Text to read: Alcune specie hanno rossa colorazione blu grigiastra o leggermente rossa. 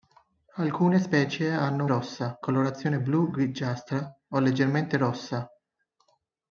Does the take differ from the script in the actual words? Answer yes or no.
no